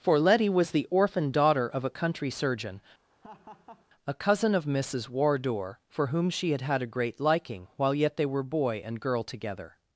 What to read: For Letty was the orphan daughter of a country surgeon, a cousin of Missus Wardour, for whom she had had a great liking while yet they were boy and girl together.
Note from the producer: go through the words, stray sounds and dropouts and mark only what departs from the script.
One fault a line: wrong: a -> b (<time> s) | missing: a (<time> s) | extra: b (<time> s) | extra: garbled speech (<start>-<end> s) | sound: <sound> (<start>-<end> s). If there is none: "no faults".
sound: laugh (3.1-3.9 s)